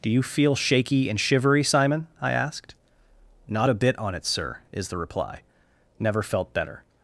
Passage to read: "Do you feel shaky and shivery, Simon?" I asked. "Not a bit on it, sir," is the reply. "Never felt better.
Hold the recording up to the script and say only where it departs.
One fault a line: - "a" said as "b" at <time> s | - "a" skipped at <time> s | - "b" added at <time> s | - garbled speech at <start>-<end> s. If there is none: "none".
none